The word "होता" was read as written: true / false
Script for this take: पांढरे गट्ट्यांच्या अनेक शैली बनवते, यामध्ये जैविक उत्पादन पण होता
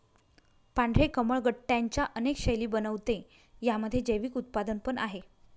false